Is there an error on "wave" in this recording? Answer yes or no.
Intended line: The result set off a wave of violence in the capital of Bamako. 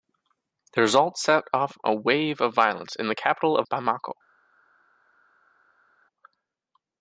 no